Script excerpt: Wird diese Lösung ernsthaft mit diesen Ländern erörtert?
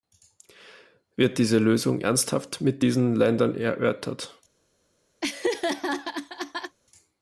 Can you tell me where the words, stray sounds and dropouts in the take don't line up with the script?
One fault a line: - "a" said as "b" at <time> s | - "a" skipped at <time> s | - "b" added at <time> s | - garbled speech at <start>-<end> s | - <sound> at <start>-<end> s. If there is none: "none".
- laugh at 5.2-6.8 s